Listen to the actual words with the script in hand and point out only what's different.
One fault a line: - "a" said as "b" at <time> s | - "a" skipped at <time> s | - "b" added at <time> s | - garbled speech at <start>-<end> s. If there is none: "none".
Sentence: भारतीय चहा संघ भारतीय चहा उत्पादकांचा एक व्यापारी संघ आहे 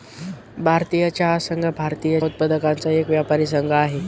- "चहा" skipped at 2.2 s